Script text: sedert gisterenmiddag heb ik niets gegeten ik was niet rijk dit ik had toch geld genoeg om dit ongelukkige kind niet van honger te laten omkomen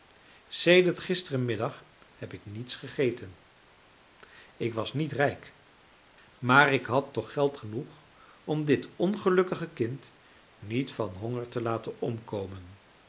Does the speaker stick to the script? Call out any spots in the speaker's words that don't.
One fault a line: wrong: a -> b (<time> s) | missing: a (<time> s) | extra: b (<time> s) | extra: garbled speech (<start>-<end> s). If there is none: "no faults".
wrong: dit -> maar (6.4 s)